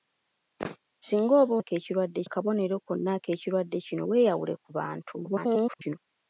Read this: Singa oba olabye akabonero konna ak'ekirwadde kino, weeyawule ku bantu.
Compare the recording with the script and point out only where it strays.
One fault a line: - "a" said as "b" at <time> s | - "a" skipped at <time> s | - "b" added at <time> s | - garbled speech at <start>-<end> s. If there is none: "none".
- "olabye" said as "ak'ekirwadde" at 1.6 s
- garbled speech at 5.2-6.0 s